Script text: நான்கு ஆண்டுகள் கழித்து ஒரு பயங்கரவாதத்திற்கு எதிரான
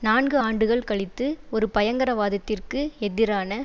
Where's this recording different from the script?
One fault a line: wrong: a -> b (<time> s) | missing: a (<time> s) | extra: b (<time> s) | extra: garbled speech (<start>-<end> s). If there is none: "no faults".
no faults